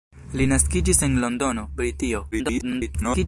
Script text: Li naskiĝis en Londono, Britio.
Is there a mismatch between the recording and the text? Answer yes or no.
yes